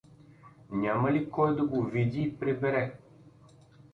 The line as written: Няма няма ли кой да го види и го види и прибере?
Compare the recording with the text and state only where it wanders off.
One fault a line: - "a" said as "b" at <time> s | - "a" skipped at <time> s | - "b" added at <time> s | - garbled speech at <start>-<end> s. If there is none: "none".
- "няма" skipped at 1.1 s
- "го види и" skipped at 2.4 s